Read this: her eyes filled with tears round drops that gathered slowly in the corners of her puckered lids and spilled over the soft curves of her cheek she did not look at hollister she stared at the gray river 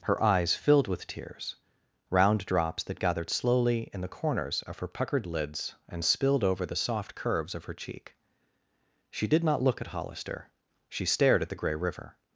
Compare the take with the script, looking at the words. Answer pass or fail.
pass